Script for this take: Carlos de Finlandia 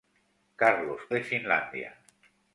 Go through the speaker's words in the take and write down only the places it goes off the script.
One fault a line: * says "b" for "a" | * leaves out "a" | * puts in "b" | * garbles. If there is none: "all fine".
all fine